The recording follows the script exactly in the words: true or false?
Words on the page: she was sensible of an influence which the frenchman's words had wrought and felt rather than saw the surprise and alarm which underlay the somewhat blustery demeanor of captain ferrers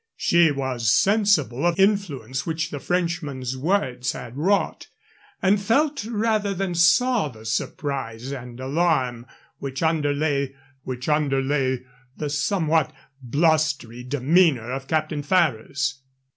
false